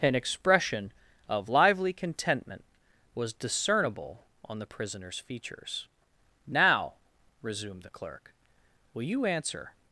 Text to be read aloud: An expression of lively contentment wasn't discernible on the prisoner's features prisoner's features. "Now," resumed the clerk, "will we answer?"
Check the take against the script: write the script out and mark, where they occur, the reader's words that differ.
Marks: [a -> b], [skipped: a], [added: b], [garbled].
An expression of lively contentment [wasn't -> was] discernible on the prisoner's features [skipped: prisoner's features.] "Now," resumed the clerk, "will [we -> you] answer?"